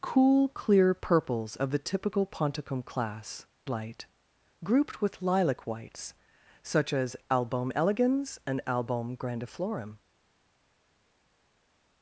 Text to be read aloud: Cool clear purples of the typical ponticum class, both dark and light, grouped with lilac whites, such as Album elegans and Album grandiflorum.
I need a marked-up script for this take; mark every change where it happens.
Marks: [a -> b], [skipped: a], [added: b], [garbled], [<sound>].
Cool clear purples of the typical ponticum class, [skipped: both dark and] light, grouped with lilac whites, such as Album elegans and Album grandiflorum.